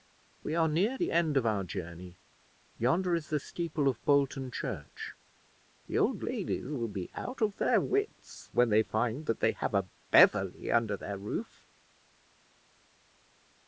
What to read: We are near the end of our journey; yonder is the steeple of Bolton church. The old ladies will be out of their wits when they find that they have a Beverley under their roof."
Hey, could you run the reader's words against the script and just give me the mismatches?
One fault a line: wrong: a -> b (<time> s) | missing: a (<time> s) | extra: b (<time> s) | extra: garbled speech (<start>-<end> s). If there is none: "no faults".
no faults